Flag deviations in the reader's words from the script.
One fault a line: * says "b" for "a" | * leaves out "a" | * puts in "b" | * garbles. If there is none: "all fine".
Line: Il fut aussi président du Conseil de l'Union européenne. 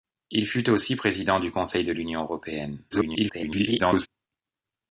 * garbles